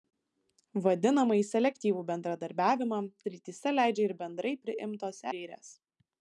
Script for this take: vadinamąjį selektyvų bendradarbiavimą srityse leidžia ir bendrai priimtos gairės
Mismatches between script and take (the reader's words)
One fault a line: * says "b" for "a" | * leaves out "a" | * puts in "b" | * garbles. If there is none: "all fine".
all fine